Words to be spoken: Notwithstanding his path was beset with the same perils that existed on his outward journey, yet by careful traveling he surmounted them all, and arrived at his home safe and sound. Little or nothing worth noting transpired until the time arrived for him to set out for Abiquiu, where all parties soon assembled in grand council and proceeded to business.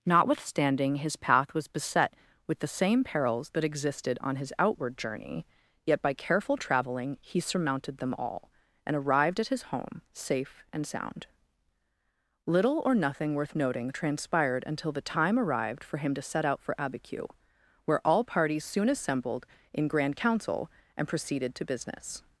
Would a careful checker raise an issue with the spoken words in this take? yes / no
no